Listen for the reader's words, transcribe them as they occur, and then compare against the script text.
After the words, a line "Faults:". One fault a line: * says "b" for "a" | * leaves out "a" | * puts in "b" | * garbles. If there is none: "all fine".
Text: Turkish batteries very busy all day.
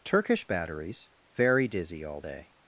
Turkish batteries very dizzy all day.
Faults:
* says "dizzy" for "busy"